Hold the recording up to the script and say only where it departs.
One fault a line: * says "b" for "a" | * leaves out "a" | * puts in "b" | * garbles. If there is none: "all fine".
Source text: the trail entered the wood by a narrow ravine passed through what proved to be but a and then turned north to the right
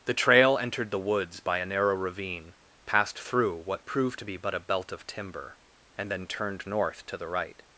* says "woods" for "wood"
* puts in "belt of timber"